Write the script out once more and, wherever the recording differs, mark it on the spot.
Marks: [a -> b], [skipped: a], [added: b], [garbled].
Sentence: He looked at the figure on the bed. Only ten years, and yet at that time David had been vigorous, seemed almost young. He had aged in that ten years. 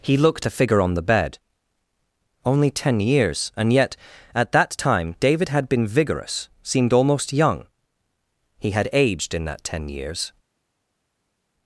He looked [skipped: at] the figure on the bed. Only ten years, and yet at that time David had been vigorous, seemed almost young. He had aged in that ten years.